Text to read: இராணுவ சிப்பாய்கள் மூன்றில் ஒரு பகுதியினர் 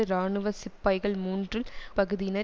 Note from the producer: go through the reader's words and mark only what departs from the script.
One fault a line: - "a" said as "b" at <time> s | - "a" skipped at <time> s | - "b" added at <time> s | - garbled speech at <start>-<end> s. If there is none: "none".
- "ஒரு" skipped at 1.7 s